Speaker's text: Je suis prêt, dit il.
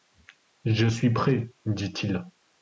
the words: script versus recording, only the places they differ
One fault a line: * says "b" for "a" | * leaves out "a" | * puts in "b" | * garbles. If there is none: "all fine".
all fine